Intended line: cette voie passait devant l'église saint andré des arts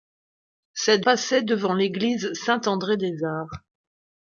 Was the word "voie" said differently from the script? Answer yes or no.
yes